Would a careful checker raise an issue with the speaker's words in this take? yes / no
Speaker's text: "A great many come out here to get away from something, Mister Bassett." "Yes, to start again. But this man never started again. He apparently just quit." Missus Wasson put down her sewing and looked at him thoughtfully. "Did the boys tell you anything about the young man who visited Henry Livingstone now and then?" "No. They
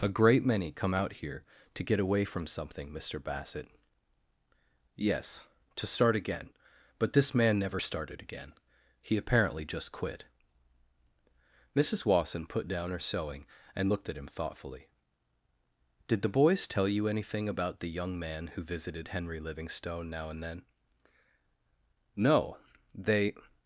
no